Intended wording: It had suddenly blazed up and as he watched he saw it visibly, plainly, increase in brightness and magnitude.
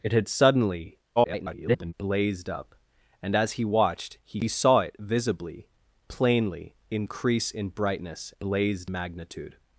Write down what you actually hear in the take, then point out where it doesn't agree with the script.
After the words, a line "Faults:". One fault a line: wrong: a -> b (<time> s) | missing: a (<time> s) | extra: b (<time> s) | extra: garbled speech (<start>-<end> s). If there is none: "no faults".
It had suddenly [garbled] blazed up and as he watched he saw it visibly, plainly, increase in brightness blazed magnitude.
Faults:
extra: garbled speech (1.2-1.9 s)
wrong: and -> blazed (8.4 s)